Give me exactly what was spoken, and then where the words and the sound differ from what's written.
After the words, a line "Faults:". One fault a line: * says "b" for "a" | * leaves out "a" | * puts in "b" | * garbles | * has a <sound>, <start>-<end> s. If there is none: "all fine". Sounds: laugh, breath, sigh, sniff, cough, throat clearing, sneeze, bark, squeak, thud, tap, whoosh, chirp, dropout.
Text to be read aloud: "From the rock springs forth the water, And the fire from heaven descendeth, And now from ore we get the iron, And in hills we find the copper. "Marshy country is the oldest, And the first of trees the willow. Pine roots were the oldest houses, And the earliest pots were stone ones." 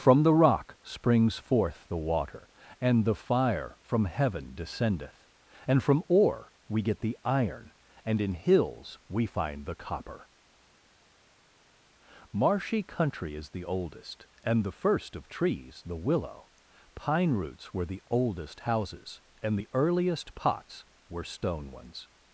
"From the rock springs forth the water, And the fire from heaven descendeth, And from ore we get the iron, And in hills we find the copper. "Marshy country is the oldest, And the first of trees the willow. Pine roots were the oldest houses, And the earliest pots were stone ones."
Faults:
* leaves out "now"